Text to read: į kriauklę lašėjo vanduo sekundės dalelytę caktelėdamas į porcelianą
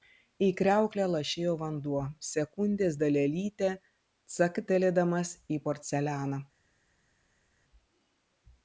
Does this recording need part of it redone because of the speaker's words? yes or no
no